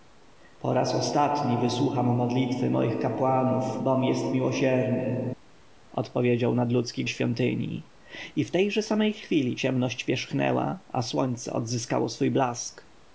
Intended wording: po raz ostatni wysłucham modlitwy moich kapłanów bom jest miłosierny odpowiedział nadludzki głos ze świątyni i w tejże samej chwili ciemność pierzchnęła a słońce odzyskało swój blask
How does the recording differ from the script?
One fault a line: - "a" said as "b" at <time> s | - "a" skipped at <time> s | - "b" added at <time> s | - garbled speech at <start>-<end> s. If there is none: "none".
- "głos ze" skipped at 7.0 s